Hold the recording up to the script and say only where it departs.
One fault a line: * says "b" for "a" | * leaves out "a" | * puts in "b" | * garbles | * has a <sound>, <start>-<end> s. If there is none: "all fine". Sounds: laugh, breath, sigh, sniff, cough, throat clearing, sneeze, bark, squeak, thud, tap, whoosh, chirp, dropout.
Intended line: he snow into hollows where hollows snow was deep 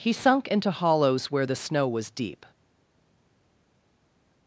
* says "sunk" for "snow"
* says "the" for "hollows"